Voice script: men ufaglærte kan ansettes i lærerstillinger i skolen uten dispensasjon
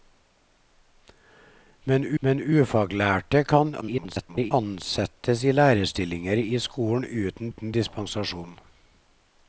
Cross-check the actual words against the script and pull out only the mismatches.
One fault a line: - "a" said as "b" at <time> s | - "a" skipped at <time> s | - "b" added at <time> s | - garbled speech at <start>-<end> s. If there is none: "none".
- "men" added at 2.2 s
- garbled speech at 3.8-4.5 s
- "uten" added at 7.5 s